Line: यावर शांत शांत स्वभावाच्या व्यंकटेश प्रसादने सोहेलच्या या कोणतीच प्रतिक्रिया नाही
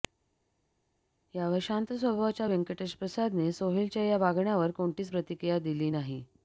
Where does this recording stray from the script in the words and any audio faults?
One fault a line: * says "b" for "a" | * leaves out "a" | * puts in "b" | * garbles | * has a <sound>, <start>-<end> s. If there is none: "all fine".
* leaves out "शांत"
* puts in "वागण्यावर"
* puts in "दिली"